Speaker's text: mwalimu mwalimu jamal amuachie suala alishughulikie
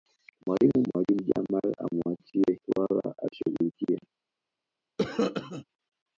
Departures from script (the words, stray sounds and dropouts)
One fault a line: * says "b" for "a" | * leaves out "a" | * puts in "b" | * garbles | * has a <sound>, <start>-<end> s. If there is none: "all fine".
* has a cough, 5.0-5.6 s